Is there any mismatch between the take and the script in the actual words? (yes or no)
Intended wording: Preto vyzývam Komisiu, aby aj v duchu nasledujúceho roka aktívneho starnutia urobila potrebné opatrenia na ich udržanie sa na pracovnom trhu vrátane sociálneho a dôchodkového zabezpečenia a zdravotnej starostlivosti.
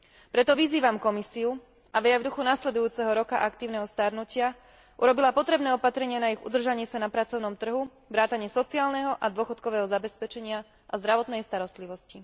no